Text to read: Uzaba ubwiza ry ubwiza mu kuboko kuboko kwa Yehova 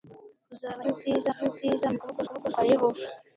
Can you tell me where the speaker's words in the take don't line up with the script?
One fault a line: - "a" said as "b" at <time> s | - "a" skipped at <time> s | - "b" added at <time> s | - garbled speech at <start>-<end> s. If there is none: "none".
none